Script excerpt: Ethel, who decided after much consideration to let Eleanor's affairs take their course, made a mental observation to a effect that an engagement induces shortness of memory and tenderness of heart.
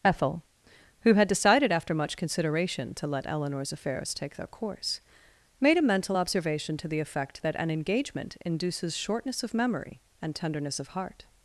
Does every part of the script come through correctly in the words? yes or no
no